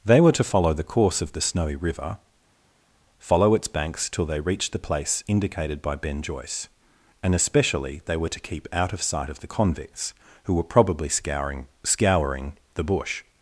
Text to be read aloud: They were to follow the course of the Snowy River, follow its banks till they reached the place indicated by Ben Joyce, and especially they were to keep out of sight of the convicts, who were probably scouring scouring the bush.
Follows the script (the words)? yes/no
yes